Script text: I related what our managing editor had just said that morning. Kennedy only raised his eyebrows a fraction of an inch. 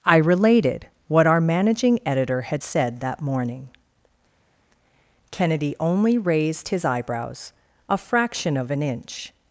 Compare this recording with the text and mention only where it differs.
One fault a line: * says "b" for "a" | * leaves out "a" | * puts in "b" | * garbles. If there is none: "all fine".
* leaves out "just"